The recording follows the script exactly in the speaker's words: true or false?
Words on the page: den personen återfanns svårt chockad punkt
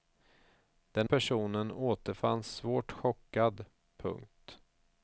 true